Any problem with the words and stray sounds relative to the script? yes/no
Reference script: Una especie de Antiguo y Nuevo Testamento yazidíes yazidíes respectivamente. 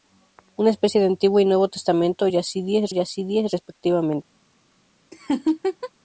yes